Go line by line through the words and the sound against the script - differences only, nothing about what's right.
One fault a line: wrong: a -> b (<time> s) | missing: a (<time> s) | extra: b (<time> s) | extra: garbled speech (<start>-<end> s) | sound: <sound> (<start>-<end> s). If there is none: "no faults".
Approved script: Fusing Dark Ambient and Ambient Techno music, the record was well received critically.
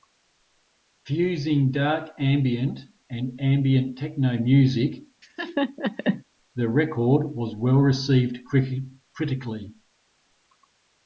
sound: laugh (5.2-6.2 s)